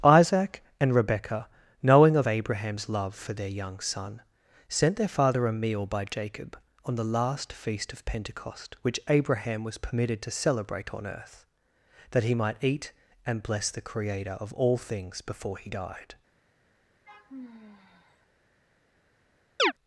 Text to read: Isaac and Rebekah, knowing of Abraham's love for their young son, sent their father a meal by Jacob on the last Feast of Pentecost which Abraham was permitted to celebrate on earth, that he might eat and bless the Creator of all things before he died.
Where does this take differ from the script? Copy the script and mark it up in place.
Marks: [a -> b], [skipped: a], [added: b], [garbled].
Isaac and Rebekah, knowing of Abraham's love for their young son, sent their father a meal by Jacob on the last Feast of Pentecost which Abraham was permitted to celebrate on earth, that he might eat and bless the Creator of all things before he died.